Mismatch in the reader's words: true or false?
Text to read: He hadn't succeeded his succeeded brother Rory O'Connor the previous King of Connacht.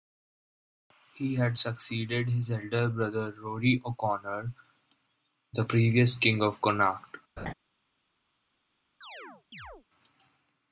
true